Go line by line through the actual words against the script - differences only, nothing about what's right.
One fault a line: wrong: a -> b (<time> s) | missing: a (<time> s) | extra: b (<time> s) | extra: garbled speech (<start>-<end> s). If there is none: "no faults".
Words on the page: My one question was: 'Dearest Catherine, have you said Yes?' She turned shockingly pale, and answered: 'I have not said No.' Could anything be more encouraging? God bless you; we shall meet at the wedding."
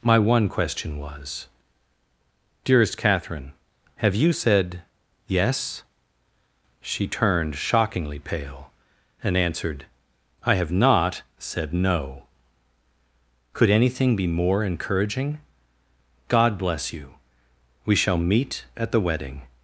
no faults